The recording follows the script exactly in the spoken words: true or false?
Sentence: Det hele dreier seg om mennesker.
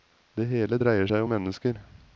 true